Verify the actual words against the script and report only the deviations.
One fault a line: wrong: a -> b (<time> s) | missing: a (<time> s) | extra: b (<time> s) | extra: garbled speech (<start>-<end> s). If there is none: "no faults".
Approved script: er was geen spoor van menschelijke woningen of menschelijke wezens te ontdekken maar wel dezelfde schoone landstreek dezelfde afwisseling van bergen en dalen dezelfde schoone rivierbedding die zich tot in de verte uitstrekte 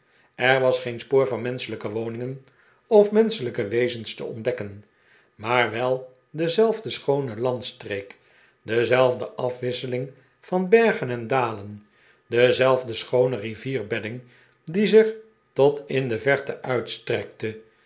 no faults